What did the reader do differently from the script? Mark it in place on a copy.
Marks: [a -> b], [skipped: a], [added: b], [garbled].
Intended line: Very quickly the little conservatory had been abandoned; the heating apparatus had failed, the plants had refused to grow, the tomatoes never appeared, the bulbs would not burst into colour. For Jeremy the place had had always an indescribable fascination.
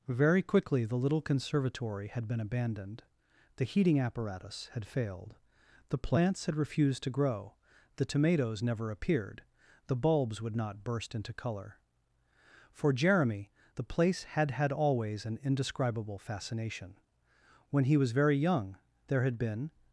Very quickly the little conservatory had been abandoned; the heating apparatus had failed, the plants had refused to grow, the tomatoes never appeared, the bulbs would not burst into colour. For Jeremy the place had had always an indescribable fascination. [added: When he was very young there had been]